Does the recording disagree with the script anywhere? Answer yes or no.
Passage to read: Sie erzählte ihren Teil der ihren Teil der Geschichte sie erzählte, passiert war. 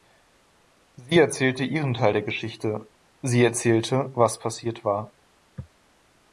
yes